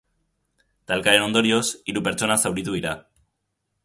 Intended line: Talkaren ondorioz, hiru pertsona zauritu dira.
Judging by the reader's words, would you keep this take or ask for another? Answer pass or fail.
pass